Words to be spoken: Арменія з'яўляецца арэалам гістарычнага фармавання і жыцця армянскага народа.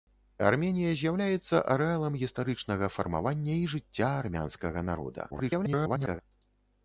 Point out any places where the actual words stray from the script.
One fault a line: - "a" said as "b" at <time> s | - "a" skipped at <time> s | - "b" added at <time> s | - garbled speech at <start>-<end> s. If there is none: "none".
- garbled speech at 5.3-6.2 s